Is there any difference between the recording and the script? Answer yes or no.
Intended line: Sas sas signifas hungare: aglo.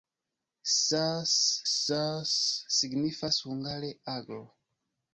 no